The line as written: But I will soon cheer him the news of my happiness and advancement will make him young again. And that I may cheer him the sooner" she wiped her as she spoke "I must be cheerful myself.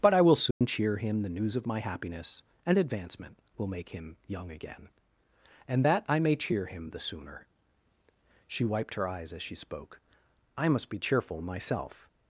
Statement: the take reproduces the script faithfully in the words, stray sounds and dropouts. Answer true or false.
false